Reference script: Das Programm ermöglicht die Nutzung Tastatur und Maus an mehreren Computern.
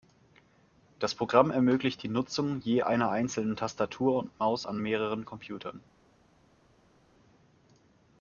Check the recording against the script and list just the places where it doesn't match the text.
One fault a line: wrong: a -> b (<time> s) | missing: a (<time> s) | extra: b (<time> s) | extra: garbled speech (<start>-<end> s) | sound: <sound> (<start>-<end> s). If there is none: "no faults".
extra: je einer einzelnen (2.6 s)